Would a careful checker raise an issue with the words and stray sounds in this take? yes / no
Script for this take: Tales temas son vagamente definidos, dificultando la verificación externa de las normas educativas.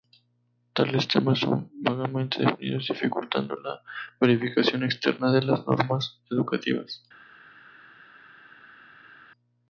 no